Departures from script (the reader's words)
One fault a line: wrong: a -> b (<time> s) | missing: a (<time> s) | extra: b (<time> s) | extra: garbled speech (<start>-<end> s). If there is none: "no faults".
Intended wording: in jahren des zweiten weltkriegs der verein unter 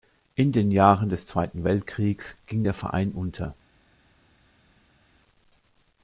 extra: den (0.5 s)
extra: ging (2.5 s)